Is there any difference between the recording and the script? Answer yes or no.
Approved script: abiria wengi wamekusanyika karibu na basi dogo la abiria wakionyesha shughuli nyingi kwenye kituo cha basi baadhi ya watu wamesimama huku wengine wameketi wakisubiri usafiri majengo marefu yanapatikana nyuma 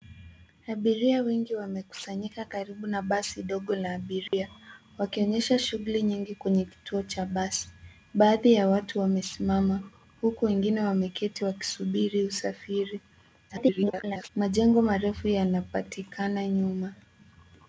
yes